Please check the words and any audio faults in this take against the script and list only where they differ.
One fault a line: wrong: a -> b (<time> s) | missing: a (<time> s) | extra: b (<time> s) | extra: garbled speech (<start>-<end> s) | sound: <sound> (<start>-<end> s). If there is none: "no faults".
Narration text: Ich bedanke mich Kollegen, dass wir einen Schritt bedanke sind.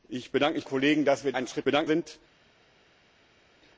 no faults